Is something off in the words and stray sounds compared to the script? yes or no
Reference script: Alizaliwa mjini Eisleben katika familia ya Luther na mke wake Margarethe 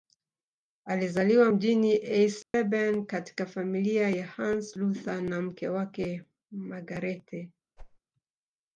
yes